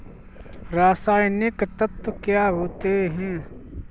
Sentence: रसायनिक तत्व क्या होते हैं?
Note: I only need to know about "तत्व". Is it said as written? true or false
true